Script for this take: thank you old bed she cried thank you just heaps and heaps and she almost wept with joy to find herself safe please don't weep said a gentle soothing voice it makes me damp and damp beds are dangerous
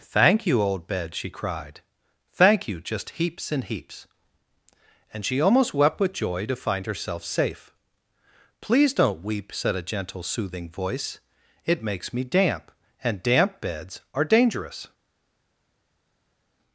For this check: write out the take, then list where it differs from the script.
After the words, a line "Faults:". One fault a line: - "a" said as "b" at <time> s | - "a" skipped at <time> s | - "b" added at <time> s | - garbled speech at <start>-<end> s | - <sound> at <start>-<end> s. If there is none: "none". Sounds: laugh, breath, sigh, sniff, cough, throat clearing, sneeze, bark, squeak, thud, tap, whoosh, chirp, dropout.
thank you old bed she cried thank you just heaps and heaps and she almost wept with joy to find herself safe please don't weep said a gentle soothing voice it makes me damp and damp beds are dangerous
Faults:
none